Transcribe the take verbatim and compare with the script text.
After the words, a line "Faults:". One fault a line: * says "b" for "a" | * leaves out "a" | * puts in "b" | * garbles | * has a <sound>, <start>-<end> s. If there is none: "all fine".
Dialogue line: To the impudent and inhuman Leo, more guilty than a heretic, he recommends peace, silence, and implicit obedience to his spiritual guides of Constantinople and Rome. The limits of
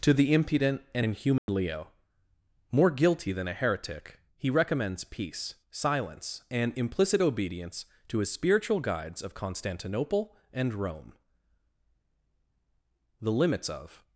To the impudent and inhuman Leo, more guilty than a heretic, he recommends peace, silence, and implicit obedience to his spiritual guides of Constantinople and Rome. The limits of
Faults:
* has a dropout, 1.4-1.5 s